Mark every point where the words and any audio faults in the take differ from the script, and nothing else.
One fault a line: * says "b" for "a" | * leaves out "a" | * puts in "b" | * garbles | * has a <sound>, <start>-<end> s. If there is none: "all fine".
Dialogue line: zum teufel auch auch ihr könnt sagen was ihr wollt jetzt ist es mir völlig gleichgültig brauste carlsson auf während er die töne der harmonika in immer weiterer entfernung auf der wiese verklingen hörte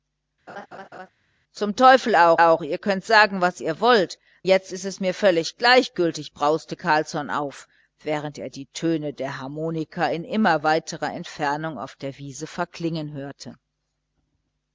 * has a laugh, 0.5-1.1 s